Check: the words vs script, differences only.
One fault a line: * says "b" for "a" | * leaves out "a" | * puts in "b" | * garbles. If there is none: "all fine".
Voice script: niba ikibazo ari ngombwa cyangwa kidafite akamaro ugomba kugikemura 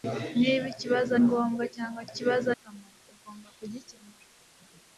* leaves out "ari"
* says "ikibazo" for "kidafite"